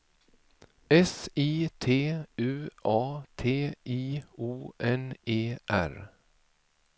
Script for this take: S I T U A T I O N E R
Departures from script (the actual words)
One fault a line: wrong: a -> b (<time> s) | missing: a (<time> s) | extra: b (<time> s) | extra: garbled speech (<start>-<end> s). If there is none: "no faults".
no faults